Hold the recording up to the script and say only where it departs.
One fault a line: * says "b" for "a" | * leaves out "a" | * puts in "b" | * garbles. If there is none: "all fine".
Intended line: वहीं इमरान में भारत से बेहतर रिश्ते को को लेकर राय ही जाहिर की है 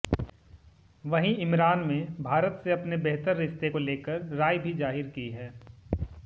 * puts in "अपने"
* leaves out "को"
* says "भी" for "ही"